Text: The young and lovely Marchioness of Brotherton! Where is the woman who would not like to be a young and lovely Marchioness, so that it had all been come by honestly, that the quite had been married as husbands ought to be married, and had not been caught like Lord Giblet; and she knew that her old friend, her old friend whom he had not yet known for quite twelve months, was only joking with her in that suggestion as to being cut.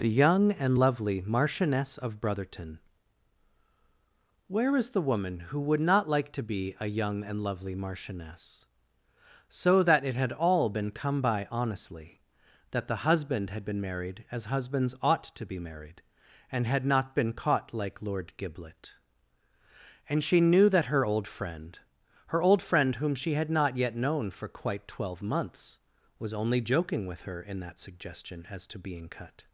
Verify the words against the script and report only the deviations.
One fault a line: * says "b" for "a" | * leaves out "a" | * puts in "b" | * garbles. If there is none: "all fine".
* says "husband" for "quite"
* says "she" for "he"